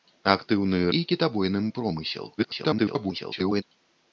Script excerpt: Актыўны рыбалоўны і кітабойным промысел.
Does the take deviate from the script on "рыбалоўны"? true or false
true